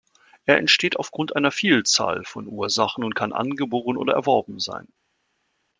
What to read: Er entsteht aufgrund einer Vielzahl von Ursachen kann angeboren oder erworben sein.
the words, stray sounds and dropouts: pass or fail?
fail